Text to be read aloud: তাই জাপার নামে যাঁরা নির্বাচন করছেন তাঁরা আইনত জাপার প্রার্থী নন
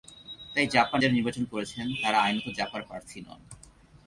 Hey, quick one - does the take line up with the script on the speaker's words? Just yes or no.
no